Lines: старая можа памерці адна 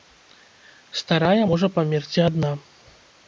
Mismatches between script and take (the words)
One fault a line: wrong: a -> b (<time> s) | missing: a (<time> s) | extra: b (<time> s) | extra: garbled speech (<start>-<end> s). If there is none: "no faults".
no faults